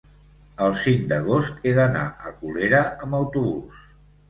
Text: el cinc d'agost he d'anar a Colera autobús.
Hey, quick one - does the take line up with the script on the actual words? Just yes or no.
no